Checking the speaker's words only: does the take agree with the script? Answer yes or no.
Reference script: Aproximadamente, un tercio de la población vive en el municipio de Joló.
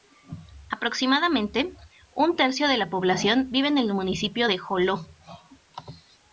yes